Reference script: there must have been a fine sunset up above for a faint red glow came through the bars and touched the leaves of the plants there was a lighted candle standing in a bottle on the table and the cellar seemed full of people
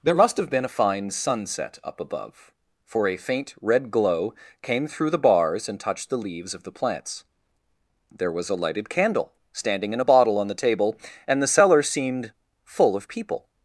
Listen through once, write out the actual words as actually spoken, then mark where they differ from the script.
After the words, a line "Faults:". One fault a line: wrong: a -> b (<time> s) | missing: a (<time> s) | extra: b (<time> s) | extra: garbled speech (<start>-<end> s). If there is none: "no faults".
there must have been a fine sunset up above for a faint red glow came through the bars and touched the leaves of the plants there was a lighted candle standing in a bottle on the table and the cellar seemed full of people
Faults:
no faults